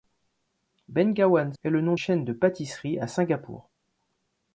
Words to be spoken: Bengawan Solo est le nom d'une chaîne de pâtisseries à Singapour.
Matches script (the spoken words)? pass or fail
fail